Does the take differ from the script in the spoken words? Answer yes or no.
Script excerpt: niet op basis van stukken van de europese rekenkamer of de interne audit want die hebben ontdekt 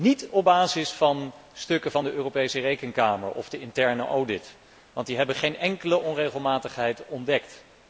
yes